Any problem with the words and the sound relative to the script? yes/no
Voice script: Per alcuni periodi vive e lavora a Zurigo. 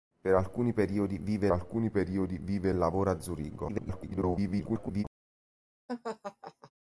yes